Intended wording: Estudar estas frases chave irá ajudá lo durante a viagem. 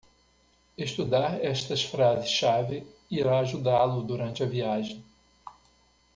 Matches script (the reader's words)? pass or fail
pass